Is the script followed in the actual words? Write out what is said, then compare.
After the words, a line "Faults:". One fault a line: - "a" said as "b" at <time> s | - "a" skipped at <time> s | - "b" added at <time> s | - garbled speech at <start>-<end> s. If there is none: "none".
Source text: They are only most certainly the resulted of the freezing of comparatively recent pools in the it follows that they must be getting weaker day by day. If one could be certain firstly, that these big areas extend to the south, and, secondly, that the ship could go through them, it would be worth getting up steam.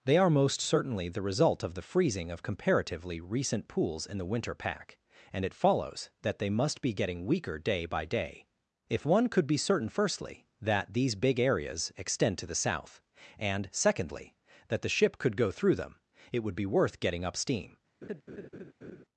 They are most certainly the result of the freezing of comparatively recent pools in the winter pack, and it follows that they must be getting weaker day by day. If one could be certain firstly, that these big areas extend to the south, and, secondly, that the ship could go through them, it would be worth getting up steam.
Faults:
- "only" skipped at 0.3 s
- "resulted" said as "result" at 1.2 s
- "winter pack and" added at 4.2 s